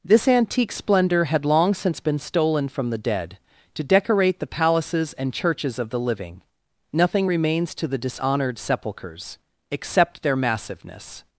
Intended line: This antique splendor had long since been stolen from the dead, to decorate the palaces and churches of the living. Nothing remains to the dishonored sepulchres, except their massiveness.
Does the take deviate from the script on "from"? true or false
false